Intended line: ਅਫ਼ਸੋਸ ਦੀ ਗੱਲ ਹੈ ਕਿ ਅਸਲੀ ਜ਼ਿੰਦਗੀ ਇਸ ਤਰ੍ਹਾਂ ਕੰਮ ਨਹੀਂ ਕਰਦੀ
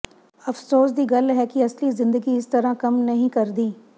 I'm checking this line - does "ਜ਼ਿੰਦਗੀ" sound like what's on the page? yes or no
yes